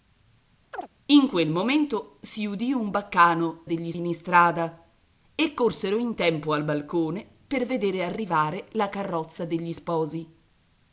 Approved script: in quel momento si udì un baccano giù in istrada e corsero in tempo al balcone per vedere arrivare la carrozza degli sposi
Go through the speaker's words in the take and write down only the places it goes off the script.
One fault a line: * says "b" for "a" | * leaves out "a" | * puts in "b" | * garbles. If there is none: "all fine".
* says "degli" for "giù"